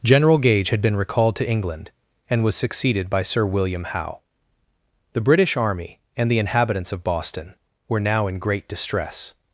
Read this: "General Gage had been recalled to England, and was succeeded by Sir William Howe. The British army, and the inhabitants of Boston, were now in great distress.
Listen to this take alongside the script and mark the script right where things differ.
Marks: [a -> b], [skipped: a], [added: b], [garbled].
"General Gage had been recalled to England, and was succeeded by Sir William Howe. The British army, and the inhabitants of Boston, were now in great distress.